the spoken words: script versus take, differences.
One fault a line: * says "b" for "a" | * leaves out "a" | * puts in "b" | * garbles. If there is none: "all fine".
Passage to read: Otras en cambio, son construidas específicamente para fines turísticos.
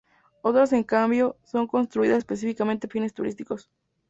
* leaves out "para"